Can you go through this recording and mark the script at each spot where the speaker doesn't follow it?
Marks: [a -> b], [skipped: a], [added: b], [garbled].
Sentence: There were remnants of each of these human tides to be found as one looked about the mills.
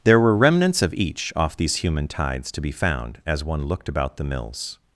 There were remnants of each [of -> off] these human tides to be found as one looked about the mills.